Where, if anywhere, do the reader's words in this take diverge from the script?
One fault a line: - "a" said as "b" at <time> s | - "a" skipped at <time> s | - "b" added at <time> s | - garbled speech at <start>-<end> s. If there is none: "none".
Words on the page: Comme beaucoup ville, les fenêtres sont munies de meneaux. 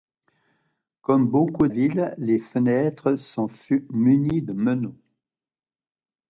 none